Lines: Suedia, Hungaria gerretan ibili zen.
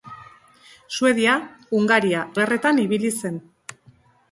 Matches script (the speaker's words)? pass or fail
pass